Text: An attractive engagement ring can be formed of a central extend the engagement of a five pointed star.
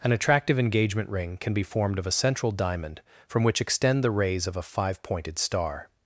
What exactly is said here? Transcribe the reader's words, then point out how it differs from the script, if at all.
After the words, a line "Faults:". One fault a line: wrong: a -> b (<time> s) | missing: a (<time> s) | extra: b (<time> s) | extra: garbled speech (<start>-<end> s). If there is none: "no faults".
An attractive engagement ring can be formed of a central diamond from which extend the rays of a five pointed star.
Faults:
extra: diamond from which (2.5 s)
wrong: engagement -> rays (4.1 s)